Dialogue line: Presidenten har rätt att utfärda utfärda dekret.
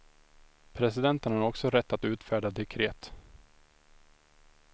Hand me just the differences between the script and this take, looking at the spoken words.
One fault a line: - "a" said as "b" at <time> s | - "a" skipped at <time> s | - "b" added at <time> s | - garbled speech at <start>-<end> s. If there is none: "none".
- "också" added at 1.4 s
- "utfärda" skipped at 2.5 s